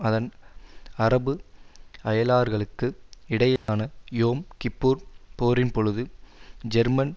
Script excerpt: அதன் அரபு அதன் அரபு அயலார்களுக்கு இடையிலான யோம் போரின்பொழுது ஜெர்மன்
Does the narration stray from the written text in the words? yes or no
yes